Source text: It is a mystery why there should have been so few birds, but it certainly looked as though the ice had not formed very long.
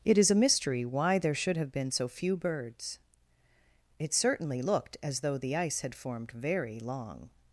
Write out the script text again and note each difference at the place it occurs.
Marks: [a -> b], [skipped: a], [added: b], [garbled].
It is a mystery why there should have been so few birds, [skipped: but] it certainly looked as though the ice had [skipped: not] formed very long.